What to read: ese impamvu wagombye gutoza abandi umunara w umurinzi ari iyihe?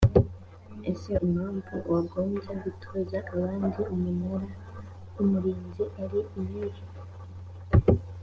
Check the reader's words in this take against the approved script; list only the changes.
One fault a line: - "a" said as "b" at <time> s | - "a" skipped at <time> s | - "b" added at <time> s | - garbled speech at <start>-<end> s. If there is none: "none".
none